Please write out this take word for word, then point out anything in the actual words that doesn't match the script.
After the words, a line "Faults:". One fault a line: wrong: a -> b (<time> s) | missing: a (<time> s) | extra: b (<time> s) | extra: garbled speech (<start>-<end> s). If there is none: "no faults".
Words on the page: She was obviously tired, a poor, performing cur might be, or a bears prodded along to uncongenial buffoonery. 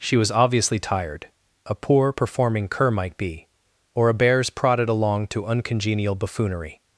She was obviously tired, a poor, performing cur might be, or a bears prodded along to uncongenial buffoonery.
Faults:
no faults